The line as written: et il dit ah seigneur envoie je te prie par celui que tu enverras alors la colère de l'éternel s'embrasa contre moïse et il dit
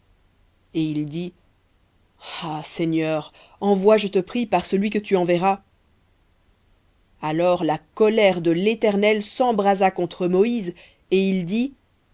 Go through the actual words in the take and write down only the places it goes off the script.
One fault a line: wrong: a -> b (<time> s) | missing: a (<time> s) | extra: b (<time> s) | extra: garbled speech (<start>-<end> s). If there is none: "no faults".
no faults